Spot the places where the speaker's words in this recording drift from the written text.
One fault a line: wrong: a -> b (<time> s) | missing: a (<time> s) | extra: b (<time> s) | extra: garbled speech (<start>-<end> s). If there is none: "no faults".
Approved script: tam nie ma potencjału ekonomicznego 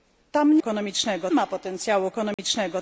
wrong: nie -> ekonomicznego (0.6 s)